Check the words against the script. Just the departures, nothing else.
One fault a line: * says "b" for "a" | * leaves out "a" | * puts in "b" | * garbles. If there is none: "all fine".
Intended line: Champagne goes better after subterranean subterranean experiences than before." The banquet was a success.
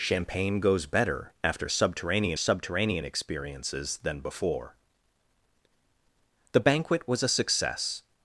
all fine